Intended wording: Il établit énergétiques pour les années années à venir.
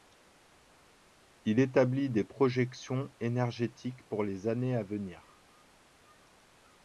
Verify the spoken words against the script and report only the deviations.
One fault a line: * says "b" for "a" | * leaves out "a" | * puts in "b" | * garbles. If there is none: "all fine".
* puts in "des projections"
* leaves out "années"